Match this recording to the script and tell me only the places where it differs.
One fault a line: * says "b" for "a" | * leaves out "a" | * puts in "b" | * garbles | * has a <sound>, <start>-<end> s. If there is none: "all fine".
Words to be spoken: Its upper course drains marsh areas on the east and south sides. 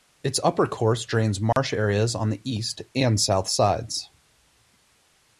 * has a dropout, 1.5-1.6 s